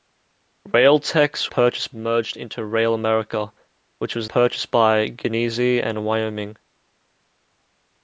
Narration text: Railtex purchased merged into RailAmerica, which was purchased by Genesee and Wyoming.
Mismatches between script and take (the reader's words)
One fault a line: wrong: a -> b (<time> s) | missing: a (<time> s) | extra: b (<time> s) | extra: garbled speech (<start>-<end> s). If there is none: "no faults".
no faults